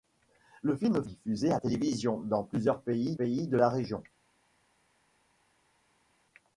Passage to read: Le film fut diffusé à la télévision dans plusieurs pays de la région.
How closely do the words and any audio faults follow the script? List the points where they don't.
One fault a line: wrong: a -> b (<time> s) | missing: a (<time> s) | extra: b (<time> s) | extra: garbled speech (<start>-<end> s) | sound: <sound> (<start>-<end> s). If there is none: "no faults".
missing: fut (1.1 s)
missing: la (1.6 s)
extra: pays (3.1 s)